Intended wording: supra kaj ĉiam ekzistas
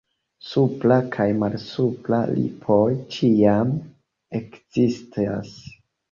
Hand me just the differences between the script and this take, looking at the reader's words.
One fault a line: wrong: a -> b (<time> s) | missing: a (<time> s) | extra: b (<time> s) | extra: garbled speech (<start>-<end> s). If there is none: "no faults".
extra: malsupra lipoj (1.4 s)